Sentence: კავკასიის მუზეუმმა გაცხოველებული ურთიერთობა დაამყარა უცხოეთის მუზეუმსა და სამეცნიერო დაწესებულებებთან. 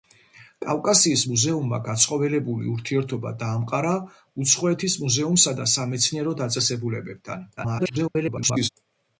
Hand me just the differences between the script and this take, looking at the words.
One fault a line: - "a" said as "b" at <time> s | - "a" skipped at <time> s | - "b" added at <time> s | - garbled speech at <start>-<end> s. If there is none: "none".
- garbled speech at 7.6-8.7 s